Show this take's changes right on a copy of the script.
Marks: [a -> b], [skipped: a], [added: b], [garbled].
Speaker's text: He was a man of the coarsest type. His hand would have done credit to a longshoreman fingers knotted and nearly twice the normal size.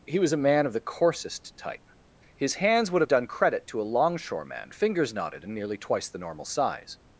He was a man of the coarsest type. His [hand -> hands] would have done credit to a longshoreman fingers knotted and nearly twice the normal size.